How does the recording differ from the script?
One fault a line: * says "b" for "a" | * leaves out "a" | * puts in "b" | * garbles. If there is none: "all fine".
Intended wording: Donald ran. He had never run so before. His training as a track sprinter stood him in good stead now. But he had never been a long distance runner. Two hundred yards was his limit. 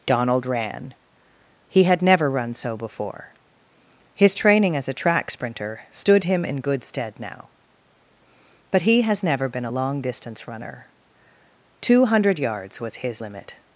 * says "has" for "had"